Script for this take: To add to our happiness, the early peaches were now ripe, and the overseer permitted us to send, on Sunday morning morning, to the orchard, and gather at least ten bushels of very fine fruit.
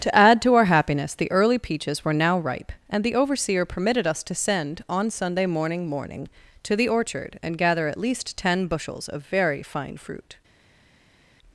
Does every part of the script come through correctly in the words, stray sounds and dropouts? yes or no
yes